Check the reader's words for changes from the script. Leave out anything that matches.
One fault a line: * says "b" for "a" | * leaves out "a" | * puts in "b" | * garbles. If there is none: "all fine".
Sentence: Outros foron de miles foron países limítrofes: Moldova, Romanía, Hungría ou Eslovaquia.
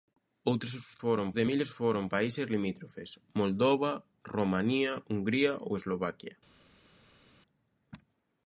all fine